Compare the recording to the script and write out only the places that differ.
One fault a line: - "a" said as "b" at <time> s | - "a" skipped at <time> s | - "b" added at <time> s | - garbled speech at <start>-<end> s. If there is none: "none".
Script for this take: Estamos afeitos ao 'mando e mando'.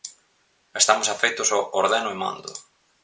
- "mando" said as "ordeno" at 1.8 s